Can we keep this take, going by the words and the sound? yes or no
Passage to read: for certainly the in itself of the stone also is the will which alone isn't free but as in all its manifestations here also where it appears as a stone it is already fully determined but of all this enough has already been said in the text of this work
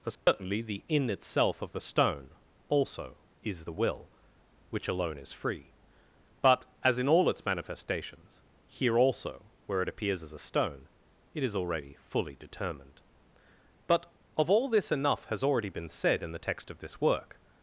no